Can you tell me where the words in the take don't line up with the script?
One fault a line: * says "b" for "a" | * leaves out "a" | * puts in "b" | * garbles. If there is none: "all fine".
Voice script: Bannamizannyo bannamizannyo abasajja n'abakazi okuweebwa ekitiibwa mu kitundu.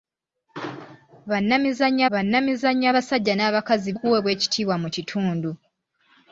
all fine